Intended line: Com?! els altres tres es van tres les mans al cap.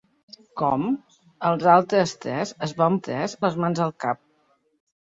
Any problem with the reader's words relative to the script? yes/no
no